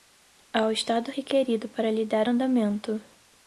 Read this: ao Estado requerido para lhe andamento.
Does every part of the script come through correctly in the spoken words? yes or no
no